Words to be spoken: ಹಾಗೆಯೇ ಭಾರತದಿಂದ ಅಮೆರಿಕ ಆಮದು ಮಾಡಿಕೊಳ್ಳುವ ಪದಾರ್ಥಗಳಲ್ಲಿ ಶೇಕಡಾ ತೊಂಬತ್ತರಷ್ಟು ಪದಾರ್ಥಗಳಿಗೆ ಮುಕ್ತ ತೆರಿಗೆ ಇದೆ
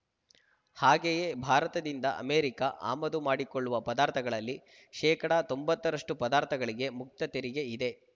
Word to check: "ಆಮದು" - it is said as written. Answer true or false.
true